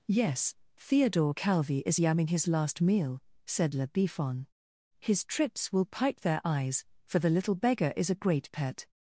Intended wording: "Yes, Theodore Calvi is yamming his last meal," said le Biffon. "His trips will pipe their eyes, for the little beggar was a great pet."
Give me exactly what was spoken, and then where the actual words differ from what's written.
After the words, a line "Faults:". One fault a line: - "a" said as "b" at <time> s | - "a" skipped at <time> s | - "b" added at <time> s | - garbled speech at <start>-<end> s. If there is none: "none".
"Yes, Theodore Calvi is yamming his last meal," said le Biffon. "His trips will pipe their eyes, for the little beggar is a great pet."
Faults:
- "was" said as "is" at 7.9 s